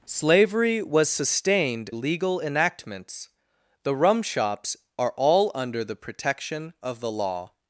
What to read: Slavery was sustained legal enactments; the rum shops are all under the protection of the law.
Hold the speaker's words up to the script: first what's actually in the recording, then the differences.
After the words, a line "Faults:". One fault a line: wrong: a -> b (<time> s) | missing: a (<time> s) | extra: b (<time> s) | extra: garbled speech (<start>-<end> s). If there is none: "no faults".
Slavery was sustained legal enactments; the rum shops are all under the protection of the law.
Faults:
no faults